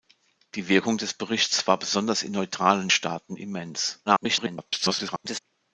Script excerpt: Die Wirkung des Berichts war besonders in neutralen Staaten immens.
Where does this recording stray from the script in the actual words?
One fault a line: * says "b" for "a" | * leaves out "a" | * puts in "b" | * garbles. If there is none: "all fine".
* garbles